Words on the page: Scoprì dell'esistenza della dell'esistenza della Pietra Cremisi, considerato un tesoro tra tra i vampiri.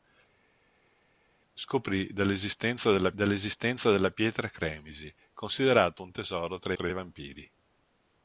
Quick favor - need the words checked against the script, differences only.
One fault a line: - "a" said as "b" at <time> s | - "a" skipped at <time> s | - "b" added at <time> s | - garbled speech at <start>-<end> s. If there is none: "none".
none